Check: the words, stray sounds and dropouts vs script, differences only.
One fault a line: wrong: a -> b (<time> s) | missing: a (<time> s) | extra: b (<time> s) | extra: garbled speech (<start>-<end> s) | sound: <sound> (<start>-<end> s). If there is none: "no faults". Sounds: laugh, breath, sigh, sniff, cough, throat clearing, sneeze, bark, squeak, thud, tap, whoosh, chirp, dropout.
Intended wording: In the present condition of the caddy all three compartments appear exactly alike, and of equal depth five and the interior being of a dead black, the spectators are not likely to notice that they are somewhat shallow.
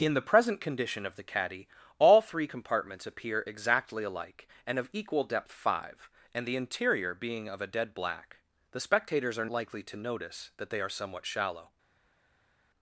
missing: not (9.5 s)